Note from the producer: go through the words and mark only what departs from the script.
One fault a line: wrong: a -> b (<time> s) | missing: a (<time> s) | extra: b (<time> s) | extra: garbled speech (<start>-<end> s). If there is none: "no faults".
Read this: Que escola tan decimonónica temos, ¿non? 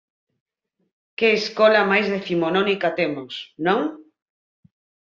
wrong: tan -> máis (1.9 s)